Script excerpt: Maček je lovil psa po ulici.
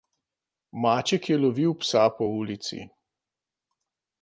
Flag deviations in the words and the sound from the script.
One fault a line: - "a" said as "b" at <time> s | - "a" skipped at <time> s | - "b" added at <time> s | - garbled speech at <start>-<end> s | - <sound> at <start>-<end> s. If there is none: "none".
none